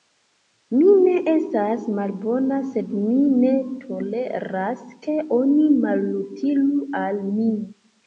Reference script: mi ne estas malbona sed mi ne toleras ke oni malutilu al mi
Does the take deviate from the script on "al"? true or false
false